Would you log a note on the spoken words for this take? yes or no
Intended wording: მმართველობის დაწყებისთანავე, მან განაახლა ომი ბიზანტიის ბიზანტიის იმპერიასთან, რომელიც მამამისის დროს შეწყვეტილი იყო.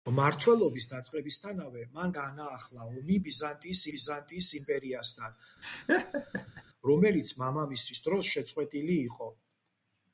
no